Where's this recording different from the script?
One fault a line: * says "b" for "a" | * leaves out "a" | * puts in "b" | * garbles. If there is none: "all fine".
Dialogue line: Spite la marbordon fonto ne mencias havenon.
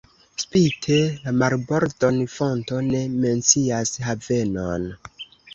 all fine